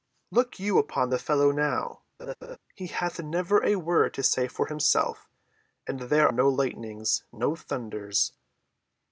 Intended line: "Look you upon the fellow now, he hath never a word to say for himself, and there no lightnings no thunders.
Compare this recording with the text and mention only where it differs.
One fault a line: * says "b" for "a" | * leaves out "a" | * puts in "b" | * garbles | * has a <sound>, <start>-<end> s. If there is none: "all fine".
* has a laugh, 2.2-2.6 s